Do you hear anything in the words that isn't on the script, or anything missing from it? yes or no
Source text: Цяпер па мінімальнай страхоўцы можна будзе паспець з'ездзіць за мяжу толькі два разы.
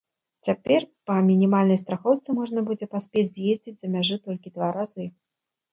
no